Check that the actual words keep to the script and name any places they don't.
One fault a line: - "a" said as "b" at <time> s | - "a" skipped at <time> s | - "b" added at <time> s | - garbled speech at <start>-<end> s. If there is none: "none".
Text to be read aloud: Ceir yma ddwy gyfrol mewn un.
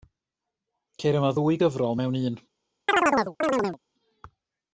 none